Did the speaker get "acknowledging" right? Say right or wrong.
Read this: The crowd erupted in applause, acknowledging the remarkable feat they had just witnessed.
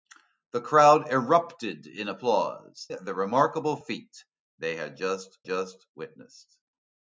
wrong